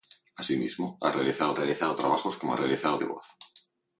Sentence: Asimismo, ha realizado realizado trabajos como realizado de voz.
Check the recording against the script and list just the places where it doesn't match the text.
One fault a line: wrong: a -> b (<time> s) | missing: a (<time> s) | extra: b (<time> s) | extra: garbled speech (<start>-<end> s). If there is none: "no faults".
no faults